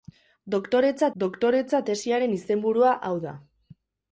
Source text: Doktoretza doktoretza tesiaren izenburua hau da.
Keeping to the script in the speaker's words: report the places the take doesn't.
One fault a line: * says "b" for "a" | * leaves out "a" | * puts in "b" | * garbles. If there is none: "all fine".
all fine